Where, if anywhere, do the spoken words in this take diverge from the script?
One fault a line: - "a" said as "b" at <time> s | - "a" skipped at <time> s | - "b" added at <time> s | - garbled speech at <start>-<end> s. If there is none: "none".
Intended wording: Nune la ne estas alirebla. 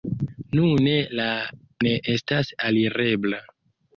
none